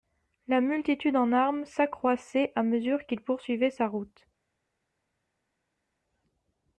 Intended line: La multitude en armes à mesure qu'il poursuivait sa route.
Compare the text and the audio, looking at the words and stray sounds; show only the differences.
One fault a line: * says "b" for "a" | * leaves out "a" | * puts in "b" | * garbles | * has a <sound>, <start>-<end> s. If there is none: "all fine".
* puts in "s'accroissait"